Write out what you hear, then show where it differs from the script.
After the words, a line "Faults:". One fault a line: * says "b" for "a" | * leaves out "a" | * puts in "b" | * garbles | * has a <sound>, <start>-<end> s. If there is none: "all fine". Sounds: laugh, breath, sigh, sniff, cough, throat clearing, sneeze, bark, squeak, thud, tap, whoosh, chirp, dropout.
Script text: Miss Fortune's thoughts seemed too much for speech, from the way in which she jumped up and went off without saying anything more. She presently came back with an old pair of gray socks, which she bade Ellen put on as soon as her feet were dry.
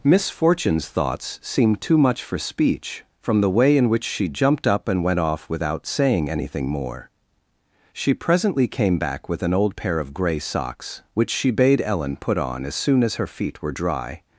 Miss Fortune's thoughts seemed too much for speech, from the way in which she jumped up and went off without saying anything more. She presently came back with an old pair of gray socks, which she bade Ellen put on as soon as her feet were dry.
Faults:
all fine